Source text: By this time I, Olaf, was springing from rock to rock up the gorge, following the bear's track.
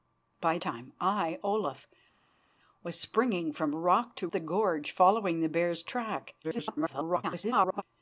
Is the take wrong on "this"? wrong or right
wrong